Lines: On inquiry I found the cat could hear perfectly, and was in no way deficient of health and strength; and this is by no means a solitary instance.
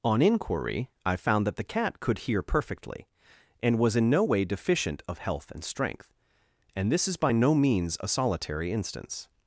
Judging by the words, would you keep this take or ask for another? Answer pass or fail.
fail